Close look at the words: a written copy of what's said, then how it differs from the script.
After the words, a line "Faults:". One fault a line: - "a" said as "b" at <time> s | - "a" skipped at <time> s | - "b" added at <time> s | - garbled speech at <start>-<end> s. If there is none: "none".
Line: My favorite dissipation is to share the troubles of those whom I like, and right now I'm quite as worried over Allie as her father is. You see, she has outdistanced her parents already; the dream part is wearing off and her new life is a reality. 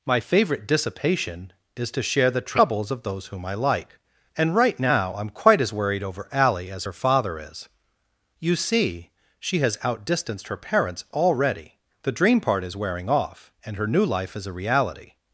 My favorite dissipation is to share the troubles of those whom I like, and right now I'm quite as worried over Allie as her father is. You see, she has outdistanced her parents already; the dream part is wearing off and her new life is a reality.
Faults:
none